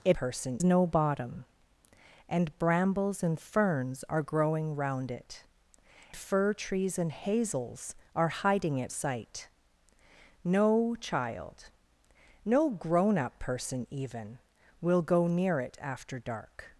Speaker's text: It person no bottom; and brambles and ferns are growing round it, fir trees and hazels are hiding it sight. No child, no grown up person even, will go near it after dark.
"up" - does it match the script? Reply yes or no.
yes